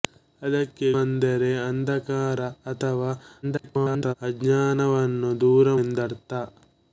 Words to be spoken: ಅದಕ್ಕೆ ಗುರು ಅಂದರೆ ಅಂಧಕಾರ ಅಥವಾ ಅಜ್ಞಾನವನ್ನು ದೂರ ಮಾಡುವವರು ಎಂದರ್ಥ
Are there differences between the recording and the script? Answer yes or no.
yes